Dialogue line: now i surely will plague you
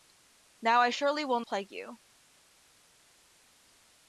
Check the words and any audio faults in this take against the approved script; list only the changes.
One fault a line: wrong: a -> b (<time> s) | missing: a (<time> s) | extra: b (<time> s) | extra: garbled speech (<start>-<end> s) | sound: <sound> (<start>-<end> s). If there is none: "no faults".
no faults